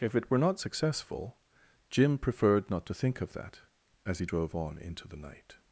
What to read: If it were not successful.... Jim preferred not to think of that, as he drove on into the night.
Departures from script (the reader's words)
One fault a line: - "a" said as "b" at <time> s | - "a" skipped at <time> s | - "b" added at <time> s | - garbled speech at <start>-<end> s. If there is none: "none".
none